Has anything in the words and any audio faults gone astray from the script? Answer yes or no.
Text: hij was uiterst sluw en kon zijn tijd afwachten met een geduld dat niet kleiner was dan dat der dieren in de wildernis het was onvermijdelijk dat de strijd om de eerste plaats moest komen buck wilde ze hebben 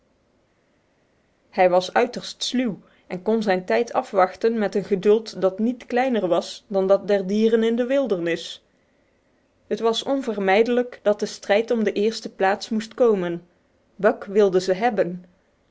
no